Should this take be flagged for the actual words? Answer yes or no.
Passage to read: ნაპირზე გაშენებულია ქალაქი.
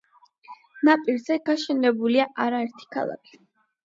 yes